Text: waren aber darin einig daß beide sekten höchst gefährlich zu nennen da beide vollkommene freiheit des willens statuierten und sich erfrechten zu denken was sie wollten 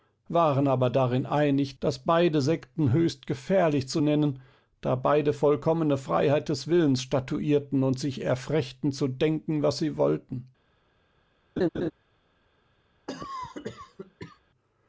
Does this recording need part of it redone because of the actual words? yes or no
no